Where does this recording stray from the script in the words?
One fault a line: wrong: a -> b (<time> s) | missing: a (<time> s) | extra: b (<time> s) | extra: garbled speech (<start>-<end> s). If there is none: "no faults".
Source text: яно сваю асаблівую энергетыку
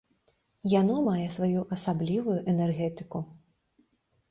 extra: мае (1.1 s)